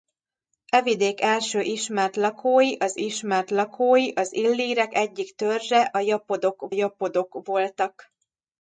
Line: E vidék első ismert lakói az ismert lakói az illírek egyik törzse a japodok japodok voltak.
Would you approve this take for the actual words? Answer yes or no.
yes